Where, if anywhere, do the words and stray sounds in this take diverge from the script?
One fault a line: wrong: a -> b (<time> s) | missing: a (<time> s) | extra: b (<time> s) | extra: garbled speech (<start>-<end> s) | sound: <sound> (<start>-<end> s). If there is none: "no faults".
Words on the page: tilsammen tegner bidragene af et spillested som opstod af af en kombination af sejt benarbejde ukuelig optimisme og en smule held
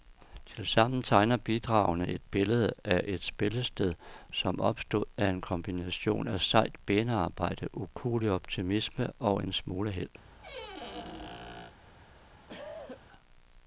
extra: et billede (2.1 s)
missing: af (5.3 s)
sound: squeak (10.2-11.7 s)
sound: cough (12.5-13.1 s)